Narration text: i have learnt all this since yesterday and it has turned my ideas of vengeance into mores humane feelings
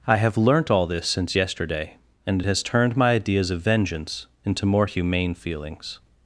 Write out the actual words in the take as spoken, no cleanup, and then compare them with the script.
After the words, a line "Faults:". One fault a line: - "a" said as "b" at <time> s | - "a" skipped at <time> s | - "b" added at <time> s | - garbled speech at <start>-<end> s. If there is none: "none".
i have learnt all this since yesterday and it has turned my ideas of vengeance into more humane feelings
Faults:
- "mores" said as "more" at 4.6 s